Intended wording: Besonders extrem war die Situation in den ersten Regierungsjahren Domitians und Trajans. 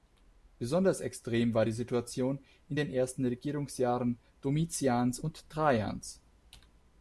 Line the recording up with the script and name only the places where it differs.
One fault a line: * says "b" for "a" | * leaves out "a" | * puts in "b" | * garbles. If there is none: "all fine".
all fine